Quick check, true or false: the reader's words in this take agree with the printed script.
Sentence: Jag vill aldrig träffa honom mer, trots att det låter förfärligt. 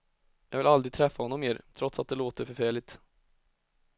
true